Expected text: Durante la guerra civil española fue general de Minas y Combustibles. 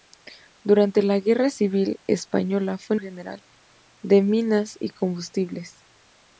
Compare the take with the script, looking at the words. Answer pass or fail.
pass